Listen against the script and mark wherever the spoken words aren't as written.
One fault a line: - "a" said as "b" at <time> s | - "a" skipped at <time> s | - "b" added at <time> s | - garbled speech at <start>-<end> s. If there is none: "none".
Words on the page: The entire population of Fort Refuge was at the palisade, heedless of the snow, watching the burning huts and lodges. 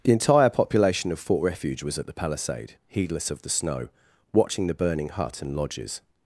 - "huts" said as "hut" at 5.1 s